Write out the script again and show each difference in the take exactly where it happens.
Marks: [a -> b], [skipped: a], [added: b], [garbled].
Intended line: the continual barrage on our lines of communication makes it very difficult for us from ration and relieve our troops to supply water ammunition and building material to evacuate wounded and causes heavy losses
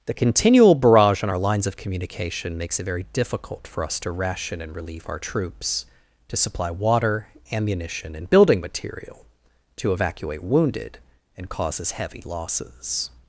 the continual barrage on our lines of communication makes it very difficult for us [from -> to] ration and relieve our troops to supply water ammunition and building material to evacuate wounded and causes heavy losses